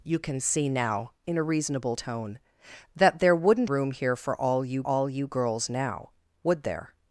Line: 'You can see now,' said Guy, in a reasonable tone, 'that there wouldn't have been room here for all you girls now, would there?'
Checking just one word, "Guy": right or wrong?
wrong